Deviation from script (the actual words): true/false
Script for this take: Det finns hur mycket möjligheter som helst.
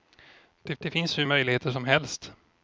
true